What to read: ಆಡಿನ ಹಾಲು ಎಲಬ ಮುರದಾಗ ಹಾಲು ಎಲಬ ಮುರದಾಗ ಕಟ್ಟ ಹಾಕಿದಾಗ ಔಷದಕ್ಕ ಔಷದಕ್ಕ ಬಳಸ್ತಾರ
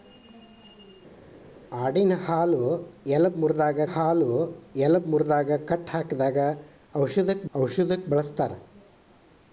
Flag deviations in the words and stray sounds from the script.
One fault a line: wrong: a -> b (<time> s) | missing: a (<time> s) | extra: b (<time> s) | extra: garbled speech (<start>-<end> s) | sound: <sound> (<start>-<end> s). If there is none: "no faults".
no faults